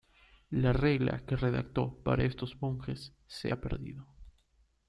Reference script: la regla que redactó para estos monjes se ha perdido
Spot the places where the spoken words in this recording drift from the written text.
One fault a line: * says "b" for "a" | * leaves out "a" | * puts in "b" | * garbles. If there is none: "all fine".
all fine